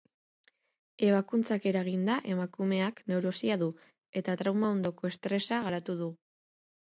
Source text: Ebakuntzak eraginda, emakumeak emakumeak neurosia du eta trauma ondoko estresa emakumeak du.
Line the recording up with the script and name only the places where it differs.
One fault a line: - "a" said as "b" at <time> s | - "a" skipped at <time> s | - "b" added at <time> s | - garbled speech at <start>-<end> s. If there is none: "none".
- "emakumeak" skipped at 3.0 s
- "emakumeak" said as "garatu" at 5.7 s